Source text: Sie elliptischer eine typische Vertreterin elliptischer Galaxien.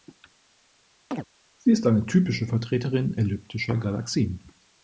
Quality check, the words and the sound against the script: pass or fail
fail